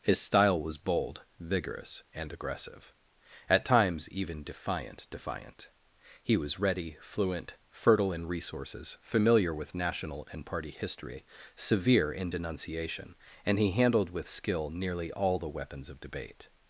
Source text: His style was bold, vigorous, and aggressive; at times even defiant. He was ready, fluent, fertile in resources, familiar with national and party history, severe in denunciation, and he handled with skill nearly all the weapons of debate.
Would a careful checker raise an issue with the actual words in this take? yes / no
yes